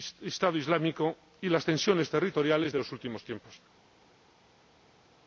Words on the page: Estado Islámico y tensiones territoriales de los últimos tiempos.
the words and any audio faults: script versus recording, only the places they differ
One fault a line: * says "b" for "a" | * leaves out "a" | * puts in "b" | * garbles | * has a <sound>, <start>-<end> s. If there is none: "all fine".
* puts in "las"